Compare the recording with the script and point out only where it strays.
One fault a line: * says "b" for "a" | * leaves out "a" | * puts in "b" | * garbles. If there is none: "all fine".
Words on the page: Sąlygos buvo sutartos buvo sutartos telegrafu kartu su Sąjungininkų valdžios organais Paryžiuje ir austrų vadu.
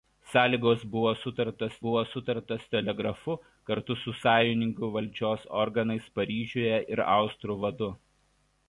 all fine